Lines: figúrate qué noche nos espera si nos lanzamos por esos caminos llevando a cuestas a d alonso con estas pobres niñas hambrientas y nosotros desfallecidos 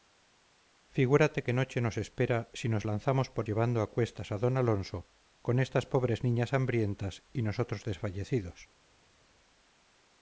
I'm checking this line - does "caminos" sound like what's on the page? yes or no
no